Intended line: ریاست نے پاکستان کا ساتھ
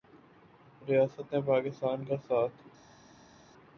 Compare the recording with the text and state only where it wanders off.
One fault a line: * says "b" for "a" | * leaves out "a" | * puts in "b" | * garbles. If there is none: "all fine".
all fine